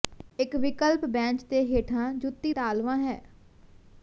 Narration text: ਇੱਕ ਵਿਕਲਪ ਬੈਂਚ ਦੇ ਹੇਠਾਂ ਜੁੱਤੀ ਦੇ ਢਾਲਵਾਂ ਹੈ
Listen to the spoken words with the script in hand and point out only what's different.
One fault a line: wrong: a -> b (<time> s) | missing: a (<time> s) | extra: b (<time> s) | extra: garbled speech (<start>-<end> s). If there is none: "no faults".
missing: ਦੇ (2.5 s)